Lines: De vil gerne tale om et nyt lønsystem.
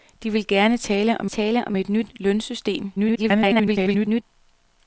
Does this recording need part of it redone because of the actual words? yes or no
yes